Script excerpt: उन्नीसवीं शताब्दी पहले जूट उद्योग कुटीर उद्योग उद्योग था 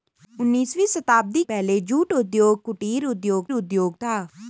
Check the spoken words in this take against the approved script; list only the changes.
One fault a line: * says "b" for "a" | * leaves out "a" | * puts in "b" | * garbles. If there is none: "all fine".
all fine